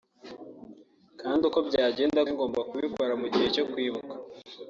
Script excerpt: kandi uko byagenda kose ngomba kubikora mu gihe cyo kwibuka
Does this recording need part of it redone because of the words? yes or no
yes